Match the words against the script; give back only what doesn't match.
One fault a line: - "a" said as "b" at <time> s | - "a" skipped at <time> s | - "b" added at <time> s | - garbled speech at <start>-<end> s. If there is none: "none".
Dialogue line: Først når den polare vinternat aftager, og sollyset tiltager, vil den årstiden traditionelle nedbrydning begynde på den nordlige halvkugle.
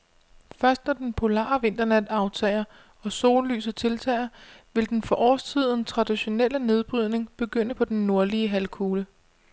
- "for" added at 5.0 s